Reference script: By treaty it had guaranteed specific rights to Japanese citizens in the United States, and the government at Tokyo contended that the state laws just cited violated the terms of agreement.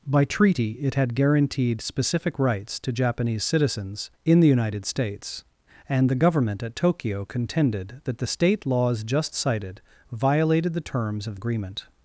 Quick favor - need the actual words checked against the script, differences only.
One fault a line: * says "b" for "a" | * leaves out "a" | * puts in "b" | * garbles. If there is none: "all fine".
all fine